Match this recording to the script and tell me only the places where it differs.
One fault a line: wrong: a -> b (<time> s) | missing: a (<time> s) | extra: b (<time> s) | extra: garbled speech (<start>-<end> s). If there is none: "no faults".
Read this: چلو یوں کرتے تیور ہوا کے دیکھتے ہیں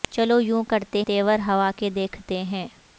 no faults